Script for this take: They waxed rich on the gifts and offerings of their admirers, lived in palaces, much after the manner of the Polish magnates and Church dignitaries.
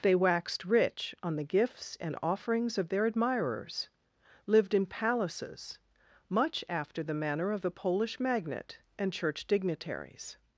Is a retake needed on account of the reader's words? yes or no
yes